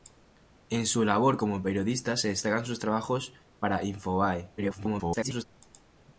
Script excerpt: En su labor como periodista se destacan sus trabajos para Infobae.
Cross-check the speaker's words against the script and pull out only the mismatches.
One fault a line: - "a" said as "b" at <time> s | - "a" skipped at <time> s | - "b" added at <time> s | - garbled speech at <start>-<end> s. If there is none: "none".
- garbled speech at 4.6-5.5 s